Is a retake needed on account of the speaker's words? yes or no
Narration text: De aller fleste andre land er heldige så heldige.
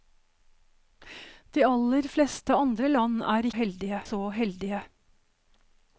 no